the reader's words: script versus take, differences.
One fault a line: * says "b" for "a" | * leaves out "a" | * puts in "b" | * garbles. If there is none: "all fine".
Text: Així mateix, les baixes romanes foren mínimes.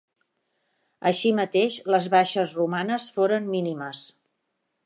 all fine